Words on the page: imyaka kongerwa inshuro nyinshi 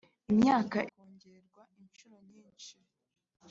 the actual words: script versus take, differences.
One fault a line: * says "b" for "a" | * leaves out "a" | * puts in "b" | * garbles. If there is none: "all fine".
all fine